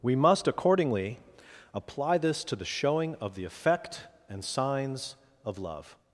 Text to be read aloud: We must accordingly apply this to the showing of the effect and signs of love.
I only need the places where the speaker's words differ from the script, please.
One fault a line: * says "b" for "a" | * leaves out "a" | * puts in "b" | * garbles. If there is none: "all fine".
all fine